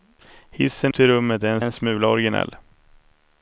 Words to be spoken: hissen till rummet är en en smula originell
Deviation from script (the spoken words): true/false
false